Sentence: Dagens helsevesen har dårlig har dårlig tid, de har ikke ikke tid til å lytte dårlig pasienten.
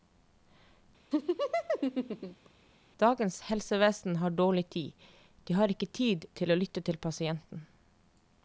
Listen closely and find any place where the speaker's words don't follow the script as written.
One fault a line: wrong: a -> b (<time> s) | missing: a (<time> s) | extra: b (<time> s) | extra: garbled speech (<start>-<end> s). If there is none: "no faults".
missing: har dårlig (4.7 s)
missing: ikke (5.9 s)
wrong: dårlig -> til (6.8 s)